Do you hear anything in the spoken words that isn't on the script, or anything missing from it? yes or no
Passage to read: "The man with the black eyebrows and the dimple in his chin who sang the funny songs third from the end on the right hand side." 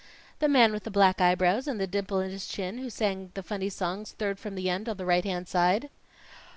no